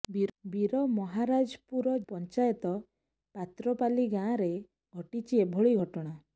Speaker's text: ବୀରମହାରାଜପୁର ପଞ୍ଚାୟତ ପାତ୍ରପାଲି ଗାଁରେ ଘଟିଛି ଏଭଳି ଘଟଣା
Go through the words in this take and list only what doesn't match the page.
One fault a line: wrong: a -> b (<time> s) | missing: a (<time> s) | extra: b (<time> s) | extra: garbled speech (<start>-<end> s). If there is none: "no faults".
no faults